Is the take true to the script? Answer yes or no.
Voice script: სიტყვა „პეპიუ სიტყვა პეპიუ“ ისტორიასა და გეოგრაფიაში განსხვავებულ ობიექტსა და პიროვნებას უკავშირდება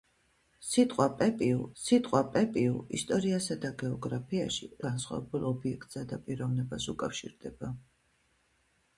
yes